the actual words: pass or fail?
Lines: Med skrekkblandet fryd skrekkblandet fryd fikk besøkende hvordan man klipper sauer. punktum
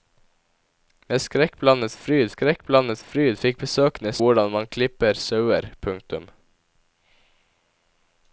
pass